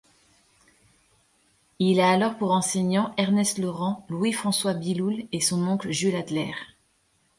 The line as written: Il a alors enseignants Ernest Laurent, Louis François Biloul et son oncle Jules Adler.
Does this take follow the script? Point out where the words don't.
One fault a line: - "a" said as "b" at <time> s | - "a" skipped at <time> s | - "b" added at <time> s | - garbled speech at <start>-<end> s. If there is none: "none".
- "pour" added at 2.4 s